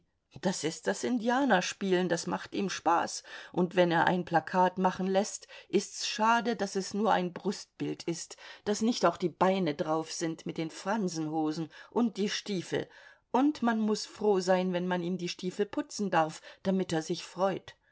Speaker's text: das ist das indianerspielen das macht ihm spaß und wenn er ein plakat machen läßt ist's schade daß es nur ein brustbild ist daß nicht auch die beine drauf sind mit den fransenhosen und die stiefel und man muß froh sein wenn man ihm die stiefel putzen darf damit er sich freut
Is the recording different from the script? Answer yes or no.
no